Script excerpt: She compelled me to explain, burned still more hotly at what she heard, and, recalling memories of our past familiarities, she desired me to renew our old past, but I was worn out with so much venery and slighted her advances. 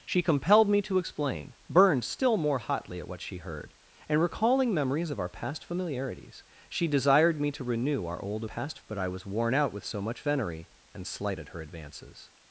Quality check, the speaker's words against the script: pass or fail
pass